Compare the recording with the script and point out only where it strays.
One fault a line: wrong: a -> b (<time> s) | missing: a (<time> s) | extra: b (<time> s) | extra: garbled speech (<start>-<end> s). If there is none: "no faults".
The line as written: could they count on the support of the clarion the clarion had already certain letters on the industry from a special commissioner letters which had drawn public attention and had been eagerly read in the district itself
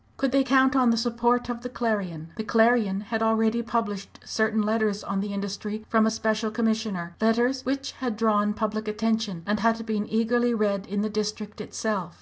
extra: published (3.6 s)